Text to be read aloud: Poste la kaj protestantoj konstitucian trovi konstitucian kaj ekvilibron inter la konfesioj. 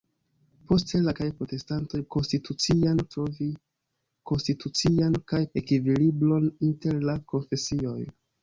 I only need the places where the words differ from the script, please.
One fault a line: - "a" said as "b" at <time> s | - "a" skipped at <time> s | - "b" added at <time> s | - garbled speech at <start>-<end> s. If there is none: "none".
none